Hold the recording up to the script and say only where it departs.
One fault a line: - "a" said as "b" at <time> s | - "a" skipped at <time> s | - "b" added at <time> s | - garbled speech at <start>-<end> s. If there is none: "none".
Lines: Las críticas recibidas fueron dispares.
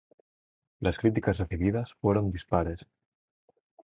none